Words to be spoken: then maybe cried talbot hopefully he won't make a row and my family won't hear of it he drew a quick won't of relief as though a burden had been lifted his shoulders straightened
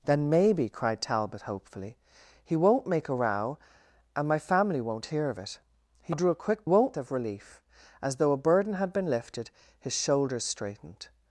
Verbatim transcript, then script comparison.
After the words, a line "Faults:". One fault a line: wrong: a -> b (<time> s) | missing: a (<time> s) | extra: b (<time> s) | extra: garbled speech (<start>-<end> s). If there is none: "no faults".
then maybe cried talbot hopefully he won't make a row and my family won't hear of it he drew a quick won't of relief as though a burden had been lifted his shoulders straightened
Faults:
no faults